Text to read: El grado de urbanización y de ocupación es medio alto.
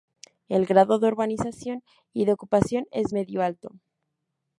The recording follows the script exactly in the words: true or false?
true